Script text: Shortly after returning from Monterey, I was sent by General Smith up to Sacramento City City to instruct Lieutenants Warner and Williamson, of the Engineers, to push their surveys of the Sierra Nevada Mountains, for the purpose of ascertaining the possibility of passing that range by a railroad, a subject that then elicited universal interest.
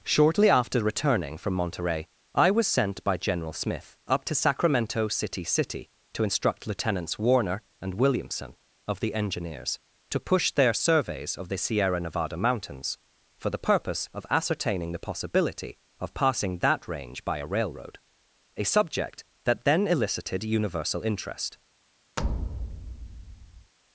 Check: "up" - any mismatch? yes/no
no